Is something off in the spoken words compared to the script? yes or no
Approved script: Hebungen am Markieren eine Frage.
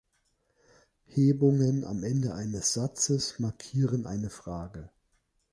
yes